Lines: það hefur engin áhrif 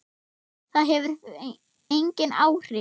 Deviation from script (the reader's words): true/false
false